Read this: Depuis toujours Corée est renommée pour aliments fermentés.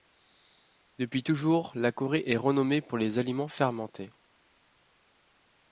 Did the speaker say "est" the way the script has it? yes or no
yes